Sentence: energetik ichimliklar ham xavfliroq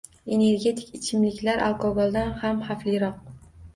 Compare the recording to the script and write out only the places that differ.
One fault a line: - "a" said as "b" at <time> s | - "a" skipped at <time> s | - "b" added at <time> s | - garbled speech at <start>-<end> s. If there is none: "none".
- "alkogoldan" added at 1.7 s